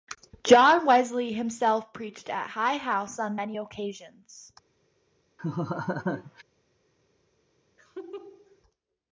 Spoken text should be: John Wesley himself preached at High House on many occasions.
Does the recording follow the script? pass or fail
pass